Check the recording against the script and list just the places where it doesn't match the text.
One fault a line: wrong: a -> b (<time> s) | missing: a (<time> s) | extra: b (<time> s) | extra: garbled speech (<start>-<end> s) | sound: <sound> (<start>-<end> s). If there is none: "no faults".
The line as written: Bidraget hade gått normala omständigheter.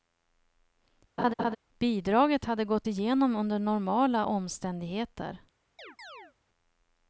sound: laugh (1.2-1.6 s)
extra: igenom under (2.9 s)
sound: chirp (5.8-6.3 s)